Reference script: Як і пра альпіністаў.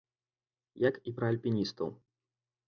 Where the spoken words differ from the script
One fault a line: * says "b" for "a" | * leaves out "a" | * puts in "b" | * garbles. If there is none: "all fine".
all fine